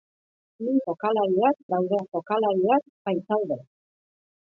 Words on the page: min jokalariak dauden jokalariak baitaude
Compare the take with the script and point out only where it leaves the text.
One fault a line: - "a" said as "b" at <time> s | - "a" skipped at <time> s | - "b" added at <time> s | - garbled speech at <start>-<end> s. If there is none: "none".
none